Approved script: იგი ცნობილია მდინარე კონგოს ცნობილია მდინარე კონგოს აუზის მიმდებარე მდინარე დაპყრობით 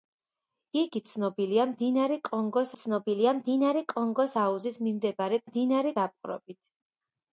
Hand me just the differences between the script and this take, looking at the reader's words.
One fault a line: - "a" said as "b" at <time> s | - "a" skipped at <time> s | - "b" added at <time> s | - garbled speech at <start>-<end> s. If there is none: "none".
none